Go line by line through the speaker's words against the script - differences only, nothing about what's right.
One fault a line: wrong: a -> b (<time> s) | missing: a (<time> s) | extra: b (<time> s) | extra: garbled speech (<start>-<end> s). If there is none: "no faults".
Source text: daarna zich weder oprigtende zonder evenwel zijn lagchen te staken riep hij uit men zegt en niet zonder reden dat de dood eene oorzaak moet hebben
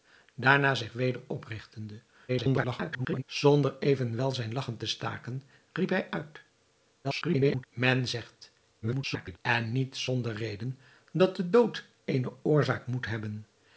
extra: garbled speech (2.3-3.2 s)
extra: garbled speech (7.0-7.6 s)
extra: garbled speech (8.8-9.4 s)